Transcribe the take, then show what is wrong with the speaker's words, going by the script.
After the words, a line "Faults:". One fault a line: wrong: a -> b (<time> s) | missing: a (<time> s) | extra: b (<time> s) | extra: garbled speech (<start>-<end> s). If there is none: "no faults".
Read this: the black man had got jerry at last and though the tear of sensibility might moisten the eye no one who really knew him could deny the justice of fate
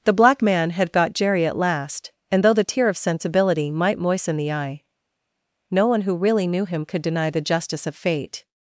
the black man had got jerry at last and though the tear of sensibility might moisten the eye no one who really knew him could deny the justice of fate
Faults:
no faults